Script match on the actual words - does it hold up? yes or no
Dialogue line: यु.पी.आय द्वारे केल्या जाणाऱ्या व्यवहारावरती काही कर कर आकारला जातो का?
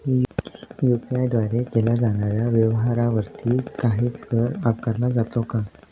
no